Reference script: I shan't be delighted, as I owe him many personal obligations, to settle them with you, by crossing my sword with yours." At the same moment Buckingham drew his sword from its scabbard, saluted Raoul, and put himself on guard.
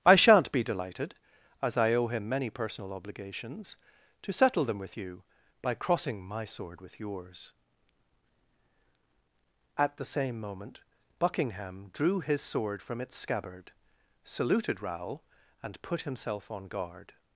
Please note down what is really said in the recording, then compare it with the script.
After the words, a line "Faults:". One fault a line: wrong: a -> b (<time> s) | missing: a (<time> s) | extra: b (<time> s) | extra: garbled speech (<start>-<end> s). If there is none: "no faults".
I shan't be delighted, as I owe him many personal obligations, to settle them with you, by crossing my sword with yours." At the same moment Buckingham drew his sword from its scabbard, saluted Raoul, and put himself on guard.
Faults:
no faults